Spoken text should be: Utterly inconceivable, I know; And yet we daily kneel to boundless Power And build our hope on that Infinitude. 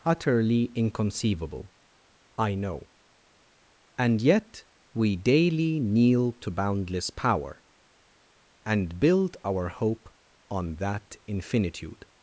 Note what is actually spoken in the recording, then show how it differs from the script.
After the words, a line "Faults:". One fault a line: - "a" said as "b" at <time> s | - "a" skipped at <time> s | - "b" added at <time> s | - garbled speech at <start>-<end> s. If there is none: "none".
Utterly inconceivable, I know; And yet we daily kneel to boundless Power And build our hope on that Infinitude.
Faults:
none